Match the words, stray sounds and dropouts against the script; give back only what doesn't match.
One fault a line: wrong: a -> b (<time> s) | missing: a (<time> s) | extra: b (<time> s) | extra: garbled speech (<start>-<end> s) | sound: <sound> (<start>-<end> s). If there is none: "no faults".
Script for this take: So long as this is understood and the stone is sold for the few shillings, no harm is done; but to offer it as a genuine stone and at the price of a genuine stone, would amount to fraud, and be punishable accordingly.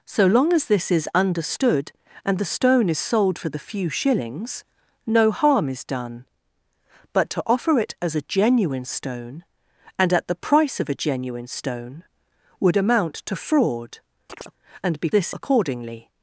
sound: chirp (14.3-14.5 s)
wrong: punishable -> this (15.1 s)